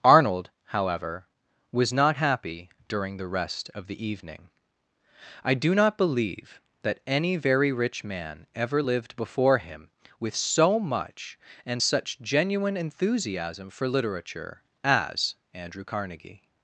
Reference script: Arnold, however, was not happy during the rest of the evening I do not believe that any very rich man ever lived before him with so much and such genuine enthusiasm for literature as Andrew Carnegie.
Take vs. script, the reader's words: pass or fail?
pass